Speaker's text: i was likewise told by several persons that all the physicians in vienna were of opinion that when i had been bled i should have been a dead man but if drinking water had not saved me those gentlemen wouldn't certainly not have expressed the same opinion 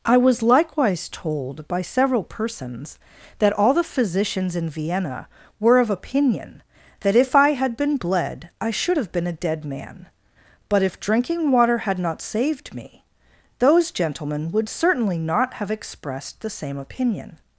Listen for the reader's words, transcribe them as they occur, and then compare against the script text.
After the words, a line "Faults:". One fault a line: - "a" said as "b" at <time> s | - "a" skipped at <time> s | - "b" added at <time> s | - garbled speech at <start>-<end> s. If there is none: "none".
i was likewise told by several persons that all the physicians in vienna were of opinion that if i had been bled i should have been a dead man but if drinking water had not saved me those gentlemen would certainly not have expressed the same opinion
Faults:
- "when" said as "if" at 7.2 s
- "wouldn't" said as "would" at 14.5 s